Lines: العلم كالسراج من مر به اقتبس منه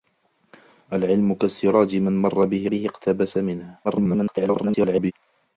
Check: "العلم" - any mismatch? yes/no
no